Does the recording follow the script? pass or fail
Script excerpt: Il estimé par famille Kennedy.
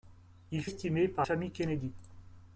pass